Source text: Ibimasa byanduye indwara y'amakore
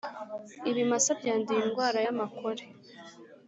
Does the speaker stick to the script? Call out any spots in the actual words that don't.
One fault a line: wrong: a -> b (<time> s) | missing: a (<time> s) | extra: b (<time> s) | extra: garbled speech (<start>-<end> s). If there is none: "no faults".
no faults